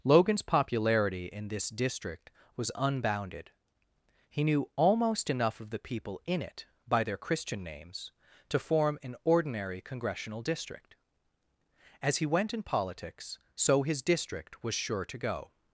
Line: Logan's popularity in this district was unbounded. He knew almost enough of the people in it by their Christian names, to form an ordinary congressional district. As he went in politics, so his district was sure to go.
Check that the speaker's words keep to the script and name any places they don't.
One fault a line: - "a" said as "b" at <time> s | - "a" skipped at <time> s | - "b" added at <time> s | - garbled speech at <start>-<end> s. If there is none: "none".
none